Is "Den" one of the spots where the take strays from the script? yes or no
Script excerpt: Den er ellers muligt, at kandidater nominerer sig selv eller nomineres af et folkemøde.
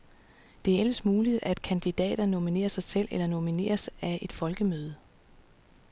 yes